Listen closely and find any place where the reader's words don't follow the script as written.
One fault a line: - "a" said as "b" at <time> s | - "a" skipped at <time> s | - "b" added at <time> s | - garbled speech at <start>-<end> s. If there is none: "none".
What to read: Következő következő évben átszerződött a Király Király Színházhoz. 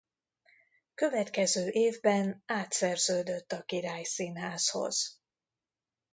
- "következő" skipped at 1.7 s
- "Király" skipped at 4.0 s